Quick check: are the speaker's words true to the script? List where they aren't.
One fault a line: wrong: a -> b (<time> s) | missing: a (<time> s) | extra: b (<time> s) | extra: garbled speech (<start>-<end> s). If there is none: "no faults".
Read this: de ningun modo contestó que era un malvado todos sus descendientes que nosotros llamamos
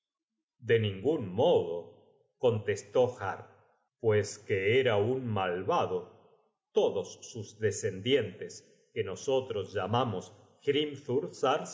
extra: har pues (3.2 s)